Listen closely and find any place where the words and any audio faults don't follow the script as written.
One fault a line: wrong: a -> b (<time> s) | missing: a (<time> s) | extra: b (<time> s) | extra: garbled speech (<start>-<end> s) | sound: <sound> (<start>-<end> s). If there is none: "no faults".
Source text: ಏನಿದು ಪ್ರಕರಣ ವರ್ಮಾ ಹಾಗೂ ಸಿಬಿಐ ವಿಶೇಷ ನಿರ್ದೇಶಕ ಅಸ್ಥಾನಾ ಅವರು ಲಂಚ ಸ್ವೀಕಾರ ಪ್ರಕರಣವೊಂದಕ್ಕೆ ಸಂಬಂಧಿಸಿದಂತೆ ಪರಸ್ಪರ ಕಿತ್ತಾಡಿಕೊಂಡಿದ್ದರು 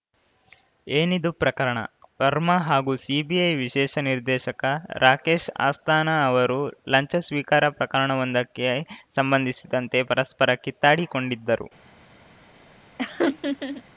extra: ರಾಕೇಶ್ (5.0 s)
sound: laugh (13.0-13.8 s)